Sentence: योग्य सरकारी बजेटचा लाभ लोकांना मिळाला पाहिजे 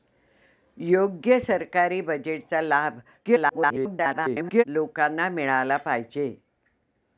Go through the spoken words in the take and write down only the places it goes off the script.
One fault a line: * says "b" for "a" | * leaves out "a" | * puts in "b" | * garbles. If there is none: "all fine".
* garbles